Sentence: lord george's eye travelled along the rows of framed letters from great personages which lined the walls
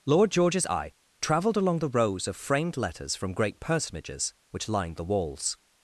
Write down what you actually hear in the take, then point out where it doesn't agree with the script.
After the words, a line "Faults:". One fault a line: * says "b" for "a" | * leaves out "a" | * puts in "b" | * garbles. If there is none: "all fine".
lord george's eye travelled along the rows of framed letters from great personages which lined the walls
Faults:
all fine